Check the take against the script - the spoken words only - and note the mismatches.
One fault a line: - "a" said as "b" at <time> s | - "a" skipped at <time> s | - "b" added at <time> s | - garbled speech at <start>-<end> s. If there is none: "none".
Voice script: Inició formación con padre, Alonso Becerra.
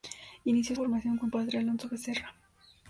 none